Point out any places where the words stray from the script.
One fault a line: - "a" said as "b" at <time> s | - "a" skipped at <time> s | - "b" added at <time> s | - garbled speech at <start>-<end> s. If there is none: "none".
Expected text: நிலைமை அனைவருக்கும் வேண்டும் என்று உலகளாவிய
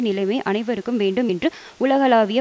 none